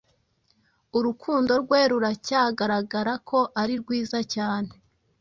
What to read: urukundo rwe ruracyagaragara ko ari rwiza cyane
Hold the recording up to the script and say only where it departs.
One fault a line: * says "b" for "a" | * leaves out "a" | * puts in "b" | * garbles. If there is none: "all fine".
all fine